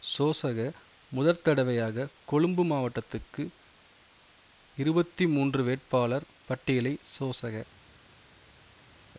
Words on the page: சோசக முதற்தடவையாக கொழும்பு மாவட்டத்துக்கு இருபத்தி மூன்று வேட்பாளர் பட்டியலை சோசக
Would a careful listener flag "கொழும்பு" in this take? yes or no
no